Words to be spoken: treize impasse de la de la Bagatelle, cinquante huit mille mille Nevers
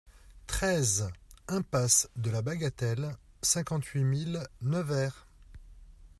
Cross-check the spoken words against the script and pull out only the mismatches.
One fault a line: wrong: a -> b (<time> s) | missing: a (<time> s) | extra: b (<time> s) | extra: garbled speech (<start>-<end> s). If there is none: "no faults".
missing: de la (2.4 s)
missing: mille (4.5 s)